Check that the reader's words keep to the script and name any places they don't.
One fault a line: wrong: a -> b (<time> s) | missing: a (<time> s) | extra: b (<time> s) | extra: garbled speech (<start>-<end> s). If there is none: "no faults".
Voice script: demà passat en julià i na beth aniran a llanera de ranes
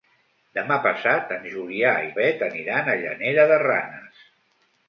missing: na (2.2 s)